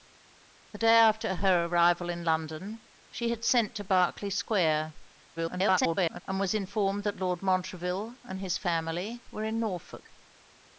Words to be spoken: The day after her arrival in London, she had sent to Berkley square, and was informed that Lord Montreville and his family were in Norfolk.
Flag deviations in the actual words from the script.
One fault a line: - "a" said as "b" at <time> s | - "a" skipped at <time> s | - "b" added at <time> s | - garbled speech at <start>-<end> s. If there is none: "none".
- garbled speech at 5.4-6.2 s